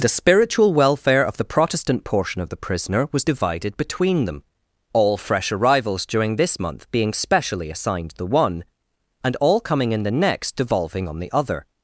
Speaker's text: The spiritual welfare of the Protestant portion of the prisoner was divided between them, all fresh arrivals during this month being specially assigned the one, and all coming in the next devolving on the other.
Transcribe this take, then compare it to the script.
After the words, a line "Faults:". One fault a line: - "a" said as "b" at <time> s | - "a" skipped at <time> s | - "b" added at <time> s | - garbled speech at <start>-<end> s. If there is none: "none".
The spiritual welfare of the Protestant portion of the prisoner was divided between them, all fresh arrivals during this month being specially assigned the one, and all coming in the next devolving on the other.
Faults:
none